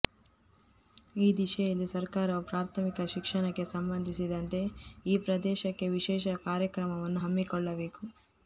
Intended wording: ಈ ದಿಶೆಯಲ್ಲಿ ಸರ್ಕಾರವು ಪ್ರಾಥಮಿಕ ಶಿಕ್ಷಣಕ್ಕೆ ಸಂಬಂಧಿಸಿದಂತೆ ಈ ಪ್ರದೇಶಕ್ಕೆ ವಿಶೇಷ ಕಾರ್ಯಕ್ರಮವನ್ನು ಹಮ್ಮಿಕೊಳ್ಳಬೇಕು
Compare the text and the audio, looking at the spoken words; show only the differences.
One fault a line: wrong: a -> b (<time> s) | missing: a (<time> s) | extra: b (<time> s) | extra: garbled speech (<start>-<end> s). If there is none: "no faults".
no faults